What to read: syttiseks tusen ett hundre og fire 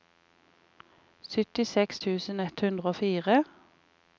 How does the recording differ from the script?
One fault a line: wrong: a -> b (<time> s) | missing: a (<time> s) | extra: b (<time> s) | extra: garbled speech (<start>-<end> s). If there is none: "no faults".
no faults